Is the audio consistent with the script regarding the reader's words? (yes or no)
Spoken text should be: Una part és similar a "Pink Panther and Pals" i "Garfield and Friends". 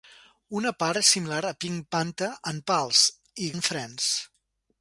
no